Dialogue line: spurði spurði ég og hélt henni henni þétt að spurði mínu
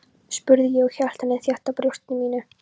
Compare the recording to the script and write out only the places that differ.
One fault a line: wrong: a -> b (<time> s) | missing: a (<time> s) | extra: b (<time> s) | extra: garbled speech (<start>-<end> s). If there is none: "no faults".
missing: spurði (0.7 s)
missing: henni (1.4 s)
wrong: spurði -> brjósti (1.8 s)